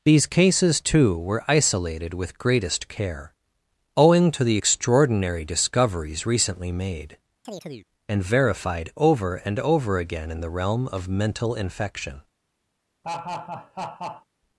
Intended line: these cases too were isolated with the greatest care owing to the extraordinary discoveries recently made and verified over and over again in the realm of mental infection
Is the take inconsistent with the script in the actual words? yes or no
yes